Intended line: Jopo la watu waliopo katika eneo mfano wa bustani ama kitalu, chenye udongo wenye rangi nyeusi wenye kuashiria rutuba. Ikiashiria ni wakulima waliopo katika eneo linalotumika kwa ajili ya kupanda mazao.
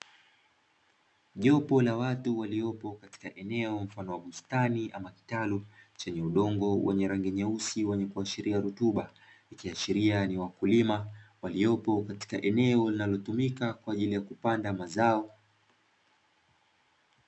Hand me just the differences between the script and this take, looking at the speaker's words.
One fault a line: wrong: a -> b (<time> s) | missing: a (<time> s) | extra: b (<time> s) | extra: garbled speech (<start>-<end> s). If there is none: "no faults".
no faults